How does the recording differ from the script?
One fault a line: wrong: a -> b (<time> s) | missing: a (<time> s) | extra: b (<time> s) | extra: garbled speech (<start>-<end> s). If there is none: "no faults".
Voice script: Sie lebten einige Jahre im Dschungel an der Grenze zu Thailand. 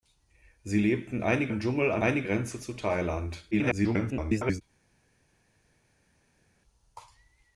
missing: Jahre (1.5 s)
wrong: der -> einige (2.0 s)
extra: garbled speech (3.5-4.6 s)